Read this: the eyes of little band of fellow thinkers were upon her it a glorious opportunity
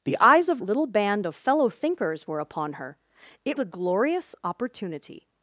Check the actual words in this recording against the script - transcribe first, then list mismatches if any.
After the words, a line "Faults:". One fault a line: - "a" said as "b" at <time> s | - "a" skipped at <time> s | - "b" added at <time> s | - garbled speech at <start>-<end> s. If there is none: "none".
the eyes of little band of fellow thinkers were upon her it a glorious opportunity
Faults:
none